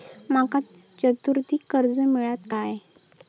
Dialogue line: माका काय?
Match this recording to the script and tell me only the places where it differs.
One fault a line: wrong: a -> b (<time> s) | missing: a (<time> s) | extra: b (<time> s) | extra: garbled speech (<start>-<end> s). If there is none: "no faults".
extra: चतुर्थीक कर्ज मेळात (1.0 s)